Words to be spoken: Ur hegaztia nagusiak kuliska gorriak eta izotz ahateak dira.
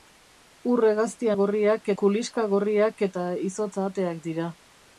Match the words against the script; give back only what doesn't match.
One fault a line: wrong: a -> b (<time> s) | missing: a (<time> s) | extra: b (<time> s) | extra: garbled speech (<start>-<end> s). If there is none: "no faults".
wrong: nagusiak -> gorriak (1.4 s)